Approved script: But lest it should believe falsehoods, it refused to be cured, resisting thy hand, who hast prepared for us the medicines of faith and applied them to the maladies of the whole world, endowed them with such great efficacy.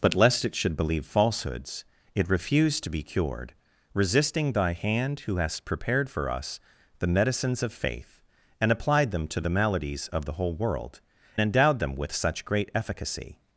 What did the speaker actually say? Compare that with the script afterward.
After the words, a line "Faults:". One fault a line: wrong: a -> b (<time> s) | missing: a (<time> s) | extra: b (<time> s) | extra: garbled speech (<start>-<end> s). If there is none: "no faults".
But lest it should believe falsehoods, it refused to be cured, resisting thy hand, who hast prepared for us the medicines of faith and applied them to the maladies of the whole world, endowed them with such great efficacy.
Faults:
no faults